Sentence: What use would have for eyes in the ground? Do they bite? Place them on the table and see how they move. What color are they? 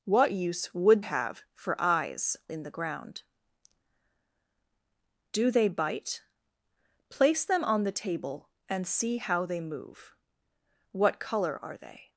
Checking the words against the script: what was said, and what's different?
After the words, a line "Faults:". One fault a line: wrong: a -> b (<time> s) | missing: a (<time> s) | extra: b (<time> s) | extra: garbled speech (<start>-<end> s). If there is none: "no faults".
What use would have for eyes in the ground? Do they bite? Place them on the table and see how they move. What color are they?
Faults:
no faults